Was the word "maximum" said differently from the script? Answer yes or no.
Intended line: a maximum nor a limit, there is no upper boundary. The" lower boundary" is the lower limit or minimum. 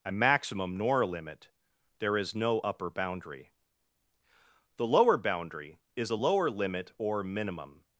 no